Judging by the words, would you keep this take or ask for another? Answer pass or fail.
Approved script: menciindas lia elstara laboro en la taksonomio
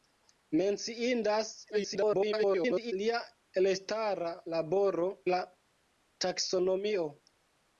fail